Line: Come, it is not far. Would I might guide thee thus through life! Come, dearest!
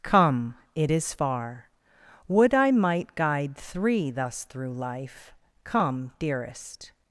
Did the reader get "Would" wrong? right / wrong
right